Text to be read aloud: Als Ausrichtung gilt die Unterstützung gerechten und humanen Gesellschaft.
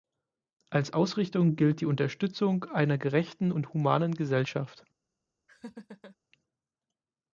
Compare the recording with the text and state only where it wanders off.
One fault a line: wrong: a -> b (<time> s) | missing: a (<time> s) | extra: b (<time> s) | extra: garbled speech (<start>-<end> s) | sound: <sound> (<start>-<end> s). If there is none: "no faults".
extra: einer (2.6 s)
sound: laugh (5.5-6.2 s)